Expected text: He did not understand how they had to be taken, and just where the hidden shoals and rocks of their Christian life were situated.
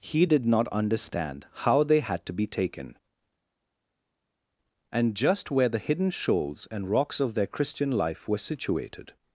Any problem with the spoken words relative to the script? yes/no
no